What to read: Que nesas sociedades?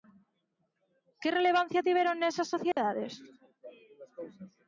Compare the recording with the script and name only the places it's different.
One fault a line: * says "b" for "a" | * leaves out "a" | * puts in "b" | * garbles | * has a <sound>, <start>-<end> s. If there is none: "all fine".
* puts in "relevancia tiveron"
* has a dropout, 2.7-2.8 s